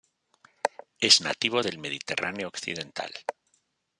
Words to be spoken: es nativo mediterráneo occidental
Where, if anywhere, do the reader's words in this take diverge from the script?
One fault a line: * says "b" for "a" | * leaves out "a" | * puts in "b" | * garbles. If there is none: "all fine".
* puts in "del"